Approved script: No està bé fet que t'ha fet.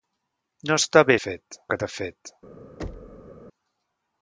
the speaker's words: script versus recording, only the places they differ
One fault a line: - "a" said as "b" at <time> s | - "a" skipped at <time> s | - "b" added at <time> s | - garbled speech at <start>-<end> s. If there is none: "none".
none